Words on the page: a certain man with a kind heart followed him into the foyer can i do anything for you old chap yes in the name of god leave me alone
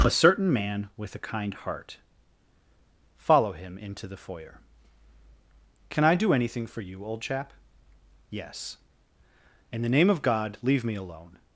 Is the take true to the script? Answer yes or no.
no